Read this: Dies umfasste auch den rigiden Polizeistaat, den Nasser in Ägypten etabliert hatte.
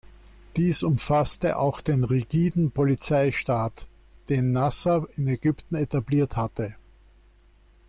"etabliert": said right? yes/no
yes